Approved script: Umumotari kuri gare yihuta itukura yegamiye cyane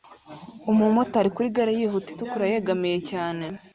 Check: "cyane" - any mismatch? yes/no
no